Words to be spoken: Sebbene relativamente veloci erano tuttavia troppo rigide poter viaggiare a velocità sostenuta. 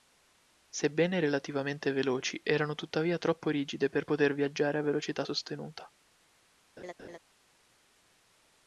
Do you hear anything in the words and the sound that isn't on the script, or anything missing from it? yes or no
yes